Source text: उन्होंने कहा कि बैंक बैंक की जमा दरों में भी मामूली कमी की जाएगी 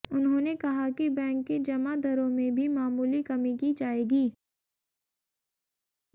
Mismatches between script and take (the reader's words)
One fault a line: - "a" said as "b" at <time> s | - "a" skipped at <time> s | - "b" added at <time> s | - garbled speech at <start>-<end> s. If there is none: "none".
- "बैंक" skipped at 1.4 s